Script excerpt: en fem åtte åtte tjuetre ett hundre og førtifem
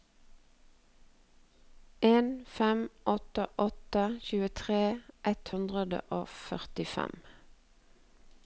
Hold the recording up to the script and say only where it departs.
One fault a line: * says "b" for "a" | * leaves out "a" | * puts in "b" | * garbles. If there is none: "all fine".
all fine